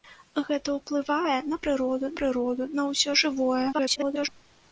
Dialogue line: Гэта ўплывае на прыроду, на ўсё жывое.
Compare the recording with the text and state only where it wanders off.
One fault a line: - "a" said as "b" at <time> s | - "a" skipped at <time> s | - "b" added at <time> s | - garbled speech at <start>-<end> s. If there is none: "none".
- "прыроду" added at 2.2 s
- garbled speech at 3.7-4.3 s